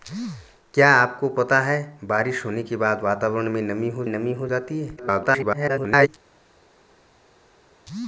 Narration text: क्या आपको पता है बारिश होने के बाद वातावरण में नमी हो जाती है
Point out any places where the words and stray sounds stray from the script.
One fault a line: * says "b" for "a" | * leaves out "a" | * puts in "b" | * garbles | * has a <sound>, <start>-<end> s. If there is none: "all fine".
* puts in "नमी हो"
* garbles